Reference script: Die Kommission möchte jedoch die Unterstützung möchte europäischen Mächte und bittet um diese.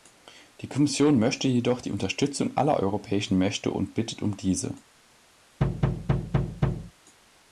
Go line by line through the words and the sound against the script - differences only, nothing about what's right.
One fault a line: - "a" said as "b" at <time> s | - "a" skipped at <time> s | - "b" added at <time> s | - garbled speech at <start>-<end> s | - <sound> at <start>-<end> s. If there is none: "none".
- "möchte" said as "aller" at 2.6 s
- thud at 5.6-6.9 s